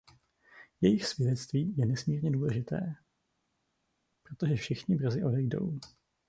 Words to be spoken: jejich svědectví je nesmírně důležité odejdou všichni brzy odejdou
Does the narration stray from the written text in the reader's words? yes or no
yes